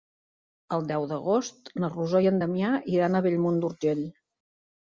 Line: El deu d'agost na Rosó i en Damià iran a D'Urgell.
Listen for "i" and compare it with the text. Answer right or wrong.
right